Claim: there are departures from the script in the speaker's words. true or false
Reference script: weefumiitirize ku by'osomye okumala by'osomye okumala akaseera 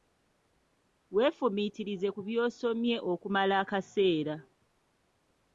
true